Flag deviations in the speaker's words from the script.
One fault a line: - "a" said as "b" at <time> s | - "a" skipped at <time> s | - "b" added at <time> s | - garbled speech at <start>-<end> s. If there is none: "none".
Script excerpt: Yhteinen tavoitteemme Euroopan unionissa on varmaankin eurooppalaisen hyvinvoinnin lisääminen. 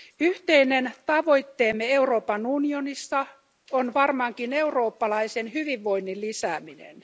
none